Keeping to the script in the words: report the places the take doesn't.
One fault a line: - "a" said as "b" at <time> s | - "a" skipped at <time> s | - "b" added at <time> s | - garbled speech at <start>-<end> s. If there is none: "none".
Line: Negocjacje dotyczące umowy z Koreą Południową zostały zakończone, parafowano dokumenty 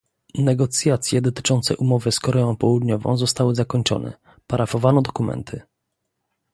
none